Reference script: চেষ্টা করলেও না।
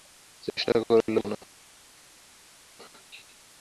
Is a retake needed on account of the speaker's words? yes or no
no